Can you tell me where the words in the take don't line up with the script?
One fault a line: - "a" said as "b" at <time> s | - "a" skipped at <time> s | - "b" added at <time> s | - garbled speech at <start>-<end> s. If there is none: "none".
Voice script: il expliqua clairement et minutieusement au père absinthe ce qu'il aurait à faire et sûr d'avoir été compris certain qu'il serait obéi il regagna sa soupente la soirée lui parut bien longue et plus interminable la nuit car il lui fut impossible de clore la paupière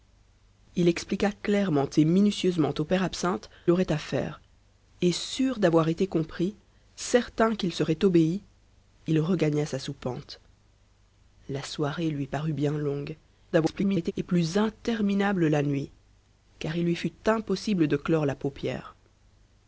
- "ce qu'il" skipped at 3.5 s
- garbled speech at 13.5-14.1 s